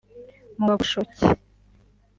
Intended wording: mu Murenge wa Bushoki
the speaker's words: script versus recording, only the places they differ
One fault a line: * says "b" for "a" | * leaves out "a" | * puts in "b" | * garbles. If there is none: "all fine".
* leaves out "Murenge"